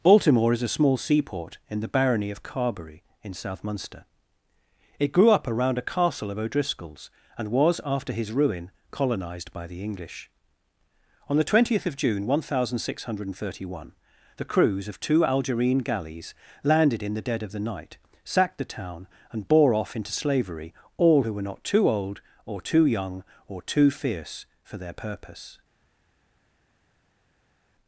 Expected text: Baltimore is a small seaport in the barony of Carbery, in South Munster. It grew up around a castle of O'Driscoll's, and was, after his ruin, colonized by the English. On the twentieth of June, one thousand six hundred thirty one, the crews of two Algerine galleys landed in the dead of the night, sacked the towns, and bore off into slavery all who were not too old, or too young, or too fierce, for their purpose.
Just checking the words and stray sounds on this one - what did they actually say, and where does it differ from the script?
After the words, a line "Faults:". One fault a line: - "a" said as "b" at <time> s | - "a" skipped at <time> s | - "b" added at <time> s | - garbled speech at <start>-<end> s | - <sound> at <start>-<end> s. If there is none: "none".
Baltimore is a small seaport in the barony of Carbery, in South Munster. It grew up around a castle of O'Driscoll's, and was, after his ruin, colonized by the English. On the twentieth of June, one thousand six hundred thirty one, the crews of two Algerine galleys landed in the dead of the night, sacked the town, and bore off into slavery all who were not too old, or too young, or too fierce, for their purpose.
Faults:
- "towns" said as "town" at 18.6 s